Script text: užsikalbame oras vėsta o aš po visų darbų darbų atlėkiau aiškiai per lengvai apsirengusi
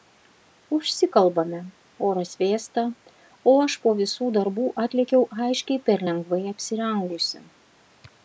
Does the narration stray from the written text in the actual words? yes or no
yes